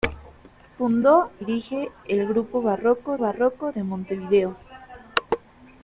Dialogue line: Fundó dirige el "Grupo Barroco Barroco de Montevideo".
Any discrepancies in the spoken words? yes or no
no